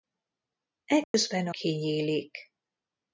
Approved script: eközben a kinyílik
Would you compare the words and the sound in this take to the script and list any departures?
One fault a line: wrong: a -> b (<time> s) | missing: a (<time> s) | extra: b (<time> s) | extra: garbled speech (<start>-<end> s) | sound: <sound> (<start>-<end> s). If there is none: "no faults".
sound: dropout (1.0-1.1 s)